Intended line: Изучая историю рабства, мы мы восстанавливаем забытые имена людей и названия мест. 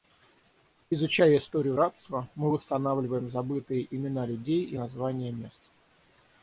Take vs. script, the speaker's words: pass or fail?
fail